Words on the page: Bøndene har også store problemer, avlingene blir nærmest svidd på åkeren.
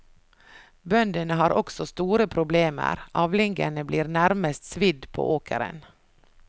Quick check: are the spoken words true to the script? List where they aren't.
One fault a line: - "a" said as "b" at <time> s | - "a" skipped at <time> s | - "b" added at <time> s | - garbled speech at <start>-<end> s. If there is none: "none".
none